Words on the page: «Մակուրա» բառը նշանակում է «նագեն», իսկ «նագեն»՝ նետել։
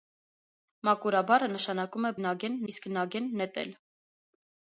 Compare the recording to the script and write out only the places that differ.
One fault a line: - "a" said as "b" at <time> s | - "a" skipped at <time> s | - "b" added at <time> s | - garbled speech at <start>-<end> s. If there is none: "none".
none